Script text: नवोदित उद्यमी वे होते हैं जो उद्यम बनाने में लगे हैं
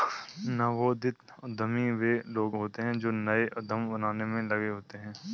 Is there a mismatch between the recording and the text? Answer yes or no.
yes